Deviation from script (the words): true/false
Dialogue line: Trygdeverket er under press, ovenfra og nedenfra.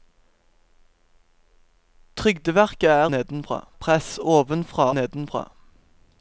true